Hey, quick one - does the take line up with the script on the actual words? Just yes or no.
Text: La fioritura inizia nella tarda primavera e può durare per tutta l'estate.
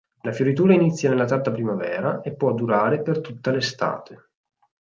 yes